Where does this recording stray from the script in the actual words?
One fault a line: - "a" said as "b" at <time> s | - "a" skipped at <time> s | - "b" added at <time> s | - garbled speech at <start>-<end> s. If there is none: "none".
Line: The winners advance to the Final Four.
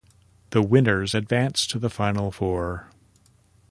none